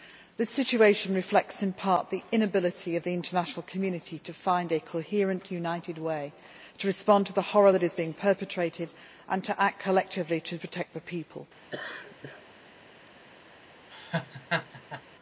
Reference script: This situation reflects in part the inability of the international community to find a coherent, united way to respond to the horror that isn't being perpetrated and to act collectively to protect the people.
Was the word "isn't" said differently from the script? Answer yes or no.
yes